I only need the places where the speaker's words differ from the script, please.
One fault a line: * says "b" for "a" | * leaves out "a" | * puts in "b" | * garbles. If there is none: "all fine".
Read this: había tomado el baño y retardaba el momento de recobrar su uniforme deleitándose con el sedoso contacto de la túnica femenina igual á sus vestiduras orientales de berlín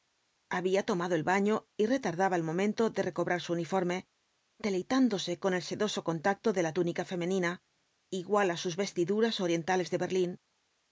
all fine